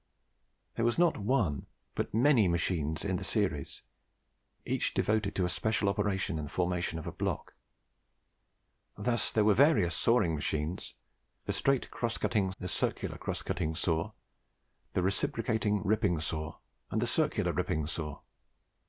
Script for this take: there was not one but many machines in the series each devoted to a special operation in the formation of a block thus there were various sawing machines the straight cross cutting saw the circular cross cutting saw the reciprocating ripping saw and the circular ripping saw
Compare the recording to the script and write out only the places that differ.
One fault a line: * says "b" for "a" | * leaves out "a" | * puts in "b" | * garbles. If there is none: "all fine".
* leaves out "saw"